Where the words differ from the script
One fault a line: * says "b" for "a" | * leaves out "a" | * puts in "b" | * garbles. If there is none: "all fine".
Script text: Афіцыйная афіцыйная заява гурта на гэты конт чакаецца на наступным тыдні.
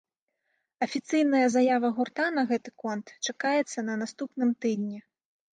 * leaves out "афіцыйная"